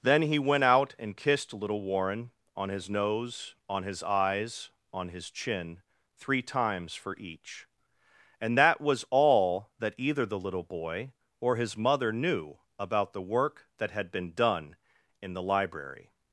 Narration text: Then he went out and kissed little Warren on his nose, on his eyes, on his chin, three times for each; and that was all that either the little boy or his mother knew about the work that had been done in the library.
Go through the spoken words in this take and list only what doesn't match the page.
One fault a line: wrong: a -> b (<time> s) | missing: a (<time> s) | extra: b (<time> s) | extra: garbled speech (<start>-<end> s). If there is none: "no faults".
no faults